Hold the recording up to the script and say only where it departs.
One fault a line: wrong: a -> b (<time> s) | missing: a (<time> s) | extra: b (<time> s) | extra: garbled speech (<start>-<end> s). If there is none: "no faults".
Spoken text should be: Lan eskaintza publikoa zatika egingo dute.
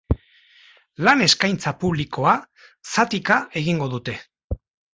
no faults